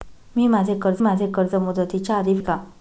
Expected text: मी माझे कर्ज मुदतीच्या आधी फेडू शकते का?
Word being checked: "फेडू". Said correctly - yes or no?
no